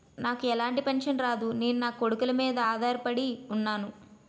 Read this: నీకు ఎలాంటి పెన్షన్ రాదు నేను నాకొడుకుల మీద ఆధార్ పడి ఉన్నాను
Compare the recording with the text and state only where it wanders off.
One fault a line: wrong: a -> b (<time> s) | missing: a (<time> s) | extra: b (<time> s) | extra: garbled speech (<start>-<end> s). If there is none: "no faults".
wrong: నీకు -> నాకు (0.2 s)